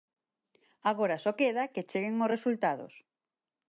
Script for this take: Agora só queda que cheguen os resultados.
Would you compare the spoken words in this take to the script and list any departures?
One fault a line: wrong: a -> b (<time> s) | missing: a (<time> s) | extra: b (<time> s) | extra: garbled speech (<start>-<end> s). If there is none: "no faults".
no faults